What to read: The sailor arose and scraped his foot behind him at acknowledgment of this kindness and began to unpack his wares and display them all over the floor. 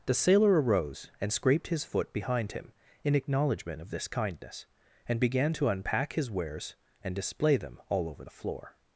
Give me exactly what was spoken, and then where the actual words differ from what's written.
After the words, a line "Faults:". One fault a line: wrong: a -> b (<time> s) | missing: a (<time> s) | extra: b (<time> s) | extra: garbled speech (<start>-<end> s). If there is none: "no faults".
The sailor arose and scraped his foot behind him in acknowledgment of this kindness and began to unpack his wares and display them all over the floor.
Faults:
wrong: at -> in (3.0 s)